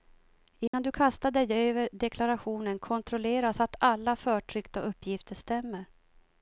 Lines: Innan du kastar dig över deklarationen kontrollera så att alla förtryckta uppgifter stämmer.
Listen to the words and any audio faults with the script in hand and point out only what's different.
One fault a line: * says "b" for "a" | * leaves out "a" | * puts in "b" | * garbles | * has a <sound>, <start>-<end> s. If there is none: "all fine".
* has a dropout, 0.7-0.7 s